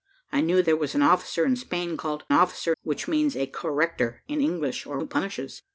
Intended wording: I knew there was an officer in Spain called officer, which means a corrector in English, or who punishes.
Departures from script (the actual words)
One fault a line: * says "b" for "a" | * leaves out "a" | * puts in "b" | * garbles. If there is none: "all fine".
all fine